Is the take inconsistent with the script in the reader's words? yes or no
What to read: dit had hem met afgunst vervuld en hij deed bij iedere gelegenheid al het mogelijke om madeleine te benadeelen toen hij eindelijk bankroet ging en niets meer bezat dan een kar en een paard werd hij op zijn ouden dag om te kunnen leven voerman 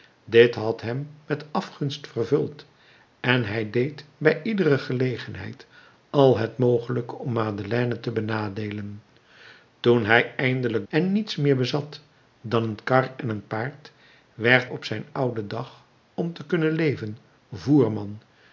yes